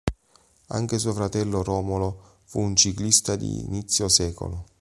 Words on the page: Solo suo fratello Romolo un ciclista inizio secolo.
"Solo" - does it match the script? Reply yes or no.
no